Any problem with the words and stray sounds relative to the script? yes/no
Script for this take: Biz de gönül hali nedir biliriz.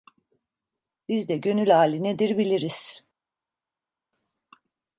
no